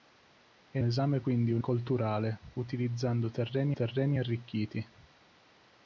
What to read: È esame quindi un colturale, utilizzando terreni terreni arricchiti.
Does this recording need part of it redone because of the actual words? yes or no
no